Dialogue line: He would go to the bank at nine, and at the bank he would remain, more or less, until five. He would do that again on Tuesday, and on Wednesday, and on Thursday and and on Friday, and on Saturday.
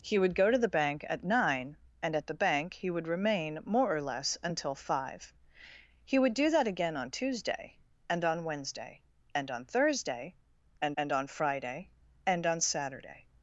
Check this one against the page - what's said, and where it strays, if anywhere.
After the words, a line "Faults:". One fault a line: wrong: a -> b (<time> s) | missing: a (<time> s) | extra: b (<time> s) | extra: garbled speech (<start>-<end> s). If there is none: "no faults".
He would go to the bank at nine, and at the bank he would remain, more or less, until five. He would do that again on Tuesday, and on Wednesday, and on Thursday and and on Friday, and on Saturday.
Faults:
no faults